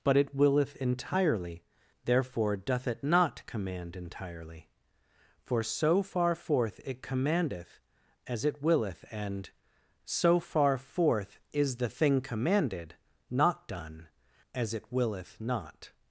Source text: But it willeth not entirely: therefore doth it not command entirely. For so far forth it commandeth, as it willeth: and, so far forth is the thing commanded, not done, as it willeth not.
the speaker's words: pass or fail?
fail